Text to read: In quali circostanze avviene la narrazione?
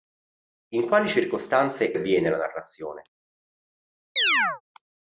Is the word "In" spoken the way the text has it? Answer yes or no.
yes